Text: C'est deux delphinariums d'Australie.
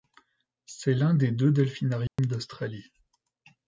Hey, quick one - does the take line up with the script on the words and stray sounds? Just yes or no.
no